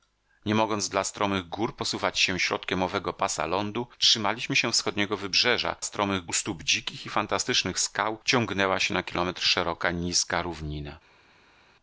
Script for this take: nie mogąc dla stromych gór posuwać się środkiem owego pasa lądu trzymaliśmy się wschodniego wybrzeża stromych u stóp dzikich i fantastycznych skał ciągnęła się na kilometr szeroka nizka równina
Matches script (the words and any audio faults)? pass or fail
pass